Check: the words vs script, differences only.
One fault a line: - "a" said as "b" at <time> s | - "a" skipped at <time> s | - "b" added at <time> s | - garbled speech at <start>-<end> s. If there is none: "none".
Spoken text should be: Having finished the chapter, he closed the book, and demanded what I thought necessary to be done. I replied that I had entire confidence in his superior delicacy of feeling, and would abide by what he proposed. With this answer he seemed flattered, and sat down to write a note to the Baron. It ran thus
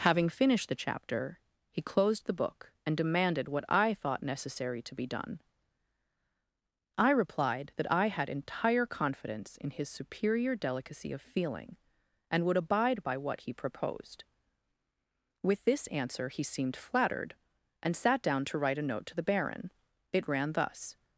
none